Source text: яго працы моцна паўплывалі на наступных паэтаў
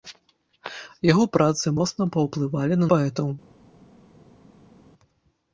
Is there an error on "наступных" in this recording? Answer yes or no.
yes